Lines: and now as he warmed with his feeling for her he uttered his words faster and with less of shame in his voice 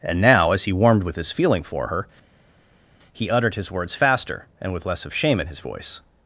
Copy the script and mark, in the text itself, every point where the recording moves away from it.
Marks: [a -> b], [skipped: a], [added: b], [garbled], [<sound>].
and now as he warmed with his feeling for her he uttered his words faster and with less of shame in his voice